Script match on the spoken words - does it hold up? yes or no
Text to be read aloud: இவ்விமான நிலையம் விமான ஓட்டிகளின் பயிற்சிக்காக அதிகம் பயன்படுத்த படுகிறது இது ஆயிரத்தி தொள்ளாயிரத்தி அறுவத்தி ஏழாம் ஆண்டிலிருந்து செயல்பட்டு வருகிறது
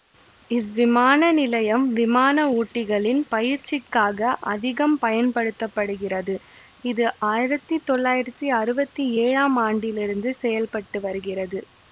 yes